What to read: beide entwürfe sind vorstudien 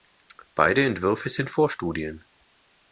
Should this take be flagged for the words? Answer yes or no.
no